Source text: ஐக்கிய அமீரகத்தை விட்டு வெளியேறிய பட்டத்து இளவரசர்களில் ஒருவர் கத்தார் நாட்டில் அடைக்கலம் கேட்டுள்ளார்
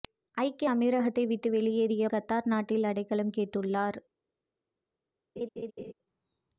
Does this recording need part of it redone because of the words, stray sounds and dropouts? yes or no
yes